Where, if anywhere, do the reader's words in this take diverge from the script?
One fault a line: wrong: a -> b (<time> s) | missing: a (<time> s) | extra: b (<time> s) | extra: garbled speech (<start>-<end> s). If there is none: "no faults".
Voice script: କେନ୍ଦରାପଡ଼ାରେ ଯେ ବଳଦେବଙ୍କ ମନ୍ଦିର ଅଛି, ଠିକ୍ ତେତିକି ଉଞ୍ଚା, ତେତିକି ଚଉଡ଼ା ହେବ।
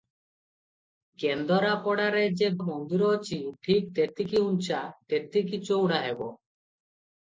missing: ବଳଦେବଙ୍କ (2.5 s)